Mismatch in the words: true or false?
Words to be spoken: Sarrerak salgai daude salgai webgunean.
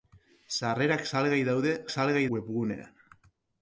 false